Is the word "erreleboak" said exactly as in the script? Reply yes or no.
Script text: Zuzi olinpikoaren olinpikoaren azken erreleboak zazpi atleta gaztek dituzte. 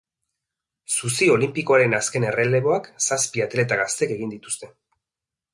yes